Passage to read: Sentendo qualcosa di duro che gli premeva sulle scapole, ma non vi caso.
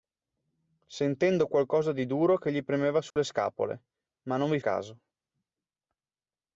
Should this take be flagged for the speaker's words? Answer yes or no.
no